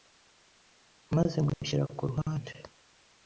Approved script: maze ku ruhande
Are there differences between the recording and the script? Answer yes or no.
yes